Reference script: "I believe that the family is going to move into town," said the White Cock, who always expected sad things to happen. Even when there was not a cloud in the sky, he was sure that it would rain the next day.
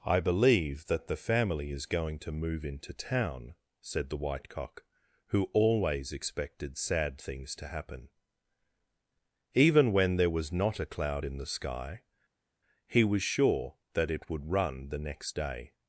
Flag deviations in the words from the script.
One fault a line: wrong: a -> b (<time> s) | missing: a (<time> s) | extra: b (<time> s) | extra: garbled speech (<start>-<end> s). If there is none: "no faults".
wrong: rain -> run (14.5 s)